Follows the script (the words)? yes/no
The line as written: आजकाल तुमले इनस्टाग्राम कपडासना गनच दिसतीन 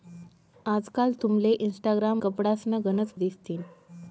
yes